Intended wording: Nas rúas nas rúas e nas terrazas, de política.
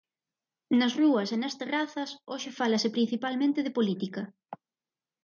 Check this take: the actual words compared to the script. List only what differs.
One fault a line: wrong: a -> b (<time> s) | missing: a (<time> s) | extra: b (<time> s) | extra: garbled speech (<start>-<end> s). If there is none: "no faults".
extra: e (1.4 s)
wrong: rúas e nas terrazas -> terrazas hoxe fálase principalmente (1.6 s)